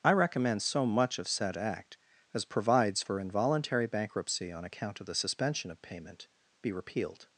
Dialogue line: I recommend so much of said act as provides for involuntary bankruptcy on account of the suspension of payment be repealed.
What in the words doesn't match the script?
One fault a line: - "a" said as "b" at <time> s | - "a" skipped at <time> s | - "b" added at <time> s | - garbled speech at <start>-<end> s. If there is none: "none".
none